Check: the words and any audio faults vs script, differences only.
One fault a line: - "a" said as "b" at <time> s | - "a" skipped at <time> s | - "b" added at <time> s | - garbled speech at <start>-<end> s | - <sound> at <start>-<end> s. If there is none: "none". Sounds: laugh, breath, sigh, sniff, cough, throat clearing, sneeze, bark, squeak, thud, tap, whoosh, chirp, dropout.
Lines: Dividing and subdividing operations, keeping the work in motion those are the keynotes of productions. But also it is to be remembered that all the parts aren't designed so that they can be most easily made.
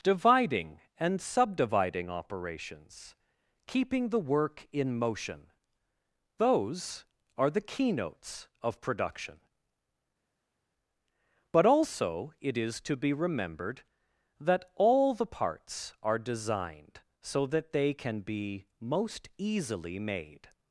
- "productions" said as "production" at 8.8 s
- "aren't" said as "are" at 16.0 s